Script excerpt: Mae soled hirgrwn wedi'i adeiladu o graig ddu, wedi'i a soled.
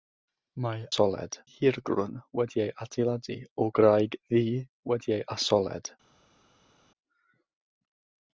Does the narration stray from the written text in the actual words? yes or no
no